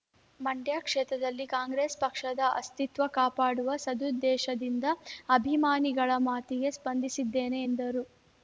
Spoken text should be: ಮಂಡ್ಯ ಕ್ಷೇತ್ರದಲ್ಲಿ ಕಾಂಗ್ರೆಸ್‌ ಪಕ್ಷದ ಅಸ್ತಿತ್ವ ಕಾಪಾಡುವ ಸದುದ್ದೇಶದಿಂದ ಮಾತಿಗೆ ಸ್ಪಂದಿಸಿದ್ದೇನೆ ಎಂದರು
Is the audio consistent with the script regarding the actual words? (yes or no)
no